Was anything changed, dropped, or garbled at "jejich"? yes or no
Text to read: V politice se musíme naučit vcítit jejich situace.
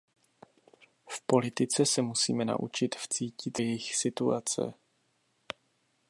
no